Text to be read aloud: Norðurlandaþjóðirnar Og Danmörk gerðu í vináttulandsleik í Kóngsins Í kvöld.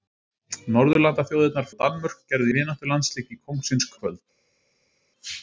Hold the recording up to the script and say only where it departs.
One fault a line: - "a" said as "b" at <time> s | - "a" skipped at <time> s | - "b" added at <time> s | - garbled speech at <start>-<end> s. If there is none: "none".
none